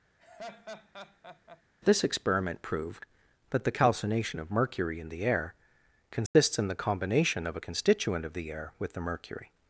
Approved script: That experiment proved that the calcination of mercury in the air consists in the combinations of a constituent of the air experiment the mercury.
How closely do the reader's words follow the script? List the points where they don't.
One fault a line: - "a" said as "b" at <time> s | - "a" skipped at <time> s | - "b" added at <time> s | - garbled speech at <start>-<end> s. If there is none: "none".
- "That" said as "This" at 1.8 s
- "combinations" said as "combination" at 6.7 s
- "experiment" said as "with" at 8.8 s